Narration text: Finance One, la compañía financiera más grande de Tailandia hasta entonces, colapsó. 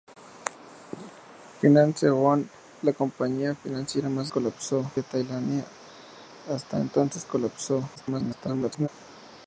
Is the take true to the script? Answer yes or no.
no